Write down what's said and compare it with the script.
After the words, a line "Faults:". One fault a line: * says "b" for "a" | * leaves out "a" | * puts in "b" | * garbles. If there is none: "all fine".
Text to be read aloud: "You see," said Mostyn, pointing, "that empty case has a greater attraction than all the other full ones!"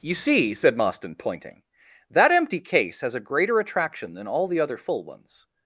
"You see," said Mostyn, pointing, "that empty case has a greater attraction than all the other full ones!"
Faults:
all fine